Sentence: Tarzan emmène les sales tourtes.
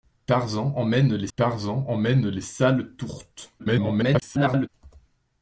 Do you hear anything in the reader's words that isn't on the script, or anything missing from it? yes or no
yes